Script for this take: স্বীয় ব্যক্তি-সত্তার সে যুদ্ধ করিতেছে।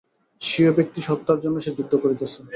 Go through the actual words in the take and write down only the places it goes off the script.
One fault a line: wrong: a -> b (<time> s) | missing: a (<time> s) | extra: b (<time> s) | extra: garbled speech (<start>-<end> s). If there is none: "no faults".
extra: জন্য (1.4 s)